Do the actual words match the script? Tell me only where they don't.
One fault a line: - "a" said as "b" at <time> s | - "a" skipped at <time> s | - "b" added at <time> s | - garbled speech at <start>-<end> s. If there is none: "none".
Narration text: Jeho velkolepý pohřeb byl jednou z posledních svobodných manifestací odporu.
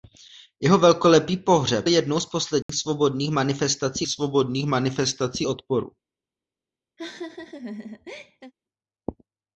- "byl" skipped at 1.9 s
- "svobodných manifestací" added at 4.1 s